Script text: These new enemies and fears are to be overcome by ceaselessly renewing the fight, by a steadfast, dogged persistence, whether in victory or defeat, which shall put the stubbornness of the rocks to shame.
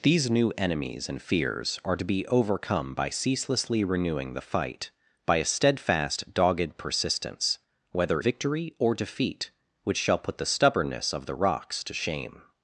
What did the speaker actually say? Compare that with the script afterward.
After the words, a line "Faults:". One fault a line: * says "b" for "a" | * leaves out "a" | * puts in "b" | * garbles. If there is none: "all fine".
These new enemies and fears are to be overcome by ceaselessly renewing the fight, by a steadfast, dogged persistence, whether victory or defeat, which shall put the stubbornness of the rocks to shame.
Faults:
* leaves out "in"